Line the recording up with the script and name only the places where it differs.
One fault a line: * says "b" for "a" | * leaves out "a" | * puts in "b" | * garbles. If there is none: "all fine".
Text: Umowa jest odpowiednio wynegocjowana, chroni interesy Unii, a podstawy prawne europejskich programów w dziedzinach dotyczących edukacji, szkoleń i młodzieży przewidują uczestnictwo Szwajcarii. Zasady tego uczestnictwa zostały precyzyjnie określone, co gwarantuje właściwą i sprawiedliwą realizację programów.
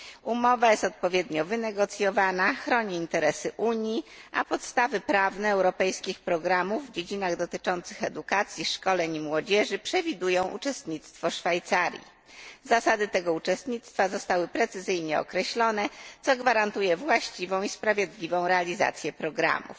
all fine